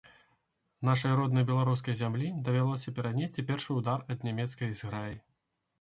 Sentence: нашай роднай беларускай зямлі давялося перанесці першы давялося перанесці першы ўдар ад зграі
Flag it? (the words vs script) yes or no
yes